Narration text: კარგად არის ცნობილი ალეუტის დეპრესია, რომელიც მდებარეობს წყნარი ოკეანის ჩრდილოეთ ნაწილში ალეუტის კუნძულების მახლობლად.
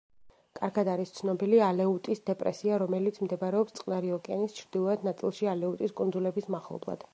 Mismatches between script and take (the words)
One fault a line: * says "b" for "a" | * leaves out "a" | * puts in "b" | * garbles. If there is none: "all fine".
all fine